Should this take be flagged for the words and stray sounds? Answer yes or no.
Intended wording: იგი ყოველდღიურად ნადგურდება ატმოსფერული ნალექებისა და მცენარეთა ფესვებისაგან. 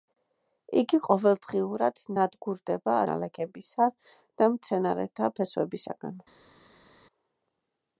yes